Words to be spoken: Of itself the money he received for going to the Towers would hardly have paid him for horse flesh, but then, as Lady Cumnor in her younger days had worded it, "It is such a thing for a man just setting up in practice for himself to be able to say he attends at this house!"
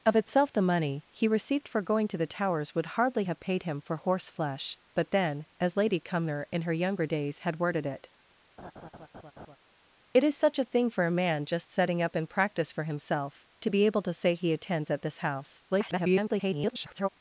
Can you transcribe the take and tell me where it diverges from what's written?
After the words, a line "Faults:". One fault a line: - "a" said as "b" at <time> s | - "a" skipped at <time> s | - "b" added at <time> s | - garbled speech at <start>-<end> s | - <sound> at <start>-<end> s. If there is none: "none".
Of itself the money he received for going to the Towers would hardly have paid him for horse flesh, but then, as Lady Cumnor in her younger days had worded it, "It is such a thing for a man just setting up in practice for himself to be able to say he attends at this house!" [garbled]
Faults:
- laugh at 8.6-9.6 s
- garbled speech at 15.7-17.1 s